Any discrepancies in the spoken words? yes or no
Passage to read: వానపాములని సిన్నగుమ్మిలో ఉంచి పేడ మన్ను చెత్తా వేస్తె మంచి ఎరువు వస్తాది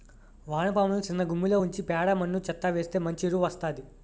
no